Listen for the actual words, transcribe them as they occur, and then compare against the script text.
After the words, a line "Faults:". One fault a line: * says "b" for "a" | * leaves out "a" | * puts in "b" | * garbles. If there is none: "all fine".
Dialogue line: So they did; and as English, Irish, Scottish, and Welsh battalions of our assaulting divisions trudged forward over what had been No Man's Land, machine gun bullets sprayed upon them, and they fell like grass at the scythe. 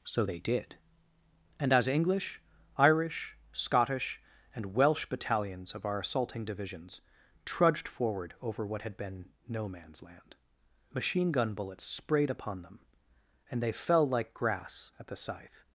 So they did; and as English, Irish, Scottish, and Welsh battalions of our assaulting divisions trudged forward over what had been No Man's Land, machine gun bullets sprayed upon them, and they fell like grass at the scythe.
Faults:
all fine